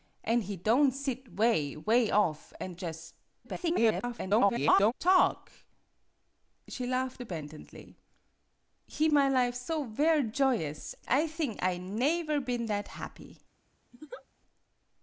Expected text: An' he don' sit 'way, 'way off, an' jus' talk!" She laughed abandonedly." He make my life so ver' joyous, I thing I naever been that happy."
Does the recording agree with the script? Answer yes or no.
no